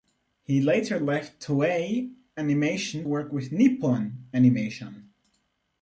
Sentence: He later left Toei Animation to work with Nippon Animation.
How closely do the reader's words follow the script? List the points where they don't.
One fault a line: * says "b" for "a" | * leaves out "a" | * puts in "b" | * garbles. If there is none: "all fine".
* leaves out "to"